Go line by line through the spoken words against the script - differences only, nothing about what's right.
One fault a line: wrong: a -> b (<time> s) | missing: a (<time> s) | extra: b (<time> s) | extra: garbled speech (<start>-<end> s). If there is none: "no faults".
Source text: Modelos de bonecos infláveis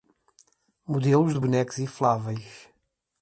no faults